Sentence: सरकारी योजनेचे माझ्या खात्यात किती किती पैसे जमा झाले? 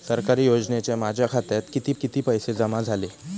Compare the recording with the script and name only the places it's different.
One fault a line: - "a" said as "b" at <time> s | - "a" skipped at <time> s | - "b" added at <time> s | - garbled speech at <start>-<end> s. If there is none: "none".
none